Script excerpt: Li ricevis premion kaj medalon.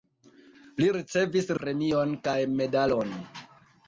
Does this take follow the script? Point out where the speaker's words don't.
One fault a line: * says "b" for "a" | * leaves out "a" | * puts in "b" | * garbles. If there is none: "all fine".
all fine